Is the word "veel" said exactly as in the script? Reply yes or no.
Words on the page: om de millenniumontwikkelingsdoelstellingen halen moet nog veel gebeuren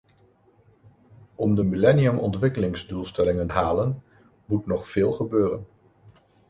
yes